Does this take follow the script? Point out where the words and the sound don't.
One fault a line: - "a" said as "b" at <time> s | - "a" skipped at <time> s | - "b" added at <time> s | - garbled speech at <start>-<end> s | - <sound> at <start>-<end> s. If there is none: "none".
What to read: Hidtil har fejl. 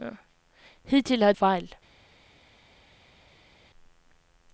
none